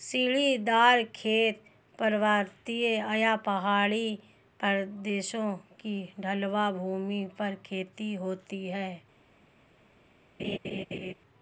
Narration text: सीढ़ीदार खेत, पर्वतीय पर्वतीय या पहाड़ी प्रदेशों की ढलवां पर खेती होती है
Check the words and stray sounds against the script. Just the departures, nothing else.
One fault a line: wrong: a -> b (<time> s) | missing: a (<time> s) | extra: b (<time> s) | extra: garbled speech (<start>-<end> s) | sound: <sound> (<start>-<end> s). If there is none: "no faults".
missing: पर्वतीय (2.9 s)
extra: भूमि (6.7 s)
sound: laugh (10.4-11.1 s)